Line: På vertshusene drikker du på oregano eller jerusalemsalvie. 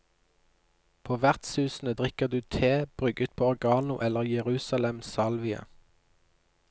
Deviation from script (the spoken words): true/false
true